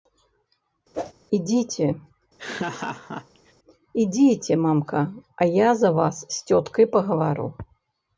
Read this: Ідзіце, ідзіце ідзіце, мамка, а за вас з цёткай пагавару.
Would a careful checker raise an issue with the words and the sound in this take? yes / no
yes